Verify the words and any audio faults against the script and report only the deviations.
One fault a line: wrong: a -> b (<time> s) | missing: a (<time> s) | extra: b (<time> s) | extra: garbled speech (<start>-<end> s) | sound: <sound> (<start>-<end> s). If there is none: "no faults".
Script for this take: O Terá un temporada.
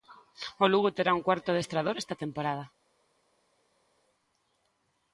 extra: Lugo (0.7 s)
extra: cuarto adestrador esta (1.3 s)